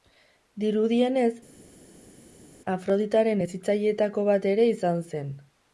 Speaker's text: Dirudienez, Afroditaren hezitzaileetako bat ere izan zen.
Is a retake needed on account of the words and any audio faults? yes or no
no